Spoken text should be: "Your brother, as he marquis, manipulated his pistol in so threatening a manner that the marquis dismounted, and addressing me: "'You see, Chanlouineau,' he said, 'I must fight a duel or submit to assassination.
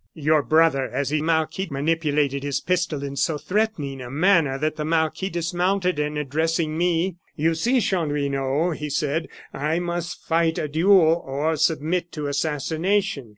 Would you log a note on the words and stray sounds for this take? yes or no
no